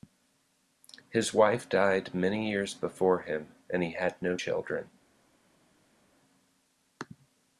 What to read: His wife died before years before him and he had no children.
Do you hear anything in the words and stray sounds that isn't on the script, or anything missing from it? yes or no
yes